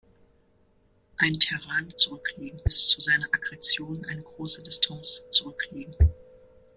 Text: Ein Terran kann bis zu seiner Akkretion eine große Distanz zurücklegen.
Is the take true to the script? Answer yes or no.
no